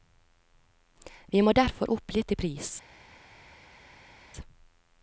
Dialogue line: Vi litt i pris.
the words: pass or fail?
fail